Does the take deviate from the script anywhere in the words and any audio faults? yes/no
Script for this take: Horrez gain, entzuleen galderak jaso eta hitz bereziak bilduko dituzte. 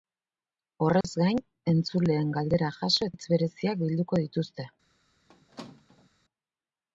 yes